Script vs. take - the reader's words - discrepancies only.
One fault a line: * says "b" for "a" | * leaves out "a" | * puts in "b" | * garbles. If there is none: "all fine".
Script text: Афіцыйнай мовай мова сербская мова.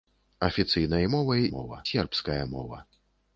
all fine